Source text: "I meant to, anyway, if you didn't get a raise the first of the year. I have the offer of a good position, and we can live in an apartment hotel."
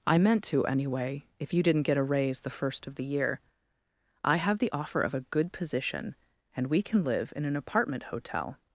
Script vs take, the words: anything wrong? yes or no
no